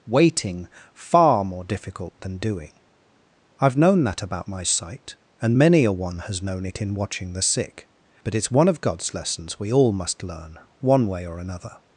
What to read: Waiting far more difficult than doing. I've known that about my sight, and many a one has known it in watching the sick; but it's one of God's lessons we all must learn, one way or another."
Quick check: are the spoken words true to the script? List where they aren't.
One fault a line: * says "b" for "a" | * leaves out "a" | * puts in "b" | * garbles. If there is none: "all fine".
all fine